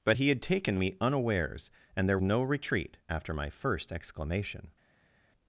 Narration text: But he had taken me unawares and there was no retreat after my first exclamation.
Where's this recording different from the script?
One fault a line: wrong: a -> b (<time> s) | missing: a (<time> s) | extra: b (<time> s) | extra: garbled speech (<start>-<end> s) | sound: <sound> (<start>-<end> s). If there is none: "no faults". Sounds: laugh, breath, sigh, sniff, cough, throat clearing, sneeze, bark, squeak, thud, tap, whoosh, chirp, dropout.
missing: was (2.2 s)